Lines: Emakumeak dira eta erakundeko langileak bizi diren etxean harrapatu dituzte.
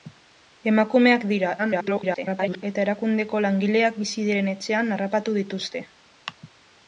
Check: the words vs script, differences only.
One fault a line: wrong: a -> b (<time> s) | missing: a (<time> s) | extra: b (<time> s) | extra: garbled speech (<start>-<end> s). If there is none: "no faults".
extra: garbled speech (1.6-2.6 s)